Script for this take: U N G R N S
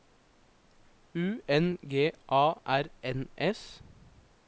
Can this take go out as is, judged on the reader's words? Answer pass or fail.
fail